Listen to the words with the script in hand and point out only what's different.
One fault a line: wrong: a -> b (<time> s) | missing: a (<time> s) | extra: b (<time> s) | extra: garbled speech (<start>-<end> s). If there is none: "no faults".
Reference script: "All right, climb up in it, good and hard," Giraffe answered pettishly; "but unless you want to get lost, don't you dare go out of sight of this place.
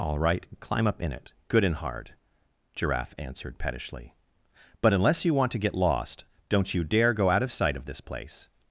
no faults